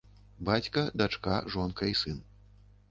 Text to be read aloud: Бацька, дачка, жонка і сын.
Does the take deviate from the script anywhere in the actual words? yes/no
no